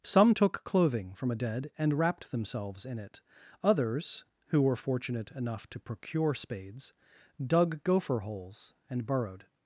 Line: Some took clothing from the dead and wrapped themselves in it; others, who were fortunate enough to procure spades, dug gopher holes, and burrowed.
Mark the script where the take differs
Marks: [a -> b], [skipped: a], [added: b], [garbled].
Some took clothing from [the -> a] dead and wrapped themselves in it; others, who were fortunate enough to procure spades, dug gopher holes, and burrowed.